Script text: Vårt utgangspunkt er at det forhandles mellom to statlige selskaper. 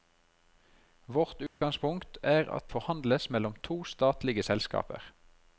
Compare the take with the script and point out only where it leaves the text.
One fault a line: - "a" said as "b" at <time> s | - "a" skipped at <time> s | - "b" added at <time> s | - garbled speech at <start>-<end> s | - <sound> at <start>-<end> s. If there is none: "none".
- dropout at 1.5-1.6 s
- "det" skipped at 2.7 s